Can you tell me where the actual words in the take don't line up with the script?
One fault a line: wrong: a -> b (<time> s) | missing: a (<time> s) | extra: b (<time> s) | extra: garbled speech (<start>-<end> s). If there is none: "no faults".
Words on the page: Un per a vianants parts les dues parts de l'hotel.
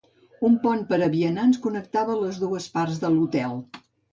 extra: pont (0.6 s)
wrong: parts -> connectava (1.7 s)